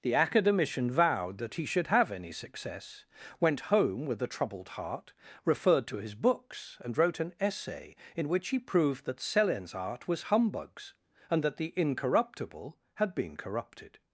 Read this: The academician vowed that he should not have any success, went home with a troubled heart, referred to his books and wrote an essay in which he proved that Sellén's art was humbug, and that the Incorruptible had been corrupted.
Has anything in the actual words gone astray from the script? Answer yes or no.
yes